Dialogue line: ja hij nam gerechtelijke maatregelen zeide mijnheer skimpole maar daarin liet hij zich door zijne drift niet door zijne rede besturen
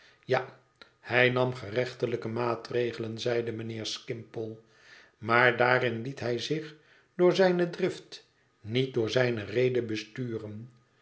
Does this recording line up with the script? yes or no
yes